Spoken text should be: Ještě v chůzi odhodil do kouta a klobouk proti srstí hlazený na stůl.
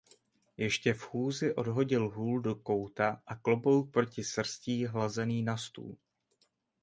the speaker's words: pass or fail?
fail